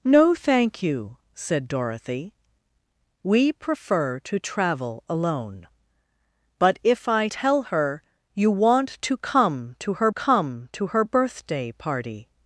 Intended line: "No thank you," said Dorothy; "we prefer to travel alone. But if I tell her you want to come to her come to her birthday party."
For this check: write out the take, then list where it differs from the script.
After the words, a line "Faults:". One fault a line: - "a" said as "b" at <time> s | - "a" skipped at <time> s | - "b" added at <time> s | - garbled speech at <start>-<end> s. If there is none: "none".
"No thank you," said Dorothy; "we prefer to travel alone. But if I tell her you want to come to her come to her birthday party."
Faults:
none